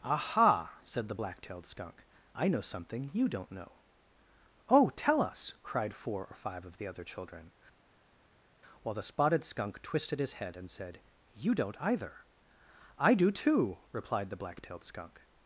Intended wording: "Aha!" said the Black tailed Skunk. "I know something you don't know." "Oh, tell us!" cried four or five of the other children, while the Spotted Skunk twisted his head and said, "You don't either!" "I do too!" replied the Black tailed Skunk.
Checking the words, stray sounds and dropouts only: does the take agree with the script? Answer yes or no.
yes